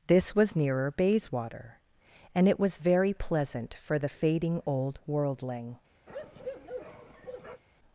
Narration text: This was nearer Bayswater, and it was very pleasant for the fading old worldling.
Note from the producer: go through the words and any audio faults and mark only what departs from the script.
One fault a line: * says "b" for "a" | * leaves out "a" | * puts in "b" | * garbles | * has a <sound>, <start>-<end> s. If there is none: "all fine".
* has a bark, 6.1-7.6 s